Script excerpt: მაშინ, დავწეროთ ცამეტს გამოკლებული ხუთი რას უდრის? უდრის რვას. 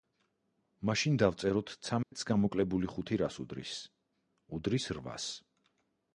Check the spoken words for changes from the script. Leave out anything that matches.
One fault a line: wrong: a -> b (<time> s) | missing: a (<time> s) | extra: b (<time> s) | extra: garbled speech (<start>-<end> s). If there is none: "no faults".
no faults